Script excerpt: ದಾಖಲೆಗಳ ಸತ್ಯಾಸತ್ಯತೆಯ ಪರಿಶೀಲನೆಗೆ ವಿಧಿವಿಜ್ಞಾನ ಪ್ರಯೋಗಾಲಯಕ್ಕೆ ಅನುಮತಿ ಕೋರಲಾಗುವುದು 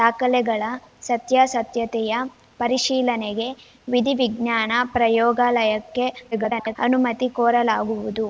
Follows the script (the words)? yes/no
no